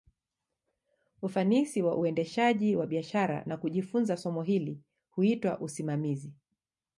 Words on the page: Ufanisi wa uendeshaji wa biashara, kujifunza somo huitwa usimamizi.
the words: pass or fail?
fail